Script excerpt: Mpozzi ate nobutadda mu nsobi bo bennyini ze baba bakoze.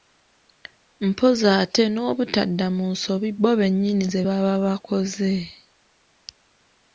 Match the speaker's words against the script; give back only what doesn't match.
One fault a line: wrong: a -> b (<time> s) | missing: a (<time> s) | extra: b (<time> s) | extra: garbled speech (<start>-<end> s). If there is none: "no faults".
no faults